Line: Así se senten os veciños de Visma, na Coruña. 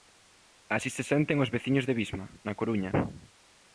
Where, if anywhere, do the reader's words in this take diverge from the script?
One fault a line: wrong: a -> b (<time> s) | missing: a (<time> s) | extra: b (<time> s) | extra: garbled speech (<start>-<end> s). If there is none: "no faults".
no faults